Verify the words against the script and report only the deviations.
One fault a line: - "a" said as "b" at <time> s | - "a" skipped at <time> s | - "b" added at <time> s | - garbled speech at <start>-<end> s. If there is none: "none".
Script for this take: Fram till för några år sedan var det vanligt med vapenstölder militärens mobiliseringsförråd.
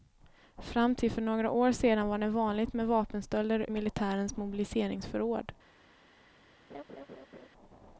none